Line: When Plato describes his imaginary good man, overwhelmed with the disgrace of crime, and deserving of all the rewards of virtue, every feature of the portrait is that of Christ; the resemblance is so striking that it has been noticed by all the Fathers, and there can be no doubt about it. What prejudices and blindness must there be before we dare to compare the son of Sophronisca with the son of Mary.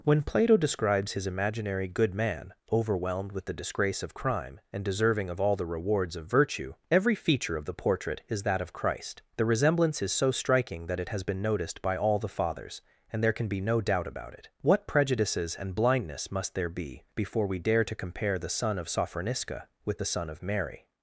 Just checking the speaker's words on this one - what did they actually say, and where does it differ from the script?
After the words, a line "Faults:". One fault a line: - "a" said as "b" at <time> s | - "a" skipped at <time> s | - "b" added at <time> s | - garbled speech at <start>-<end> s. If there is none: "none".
When Plato describes his imaginary good man, overwhelmed with the disgrace of crime, and deserving of all the rewards of virtue, every feature of the portrait is that of Christ; the resemblance is so striking that it has been noticed by all the Fathers, and there can be no doubt about it. What prejudices and blindness must there be before we dare to compare the son of Sophronisca with the son of Mary.
Faults:
none